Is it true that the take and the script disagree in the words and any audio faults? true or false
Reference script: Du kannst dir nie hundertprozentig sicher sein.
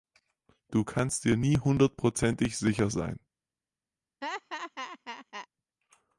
true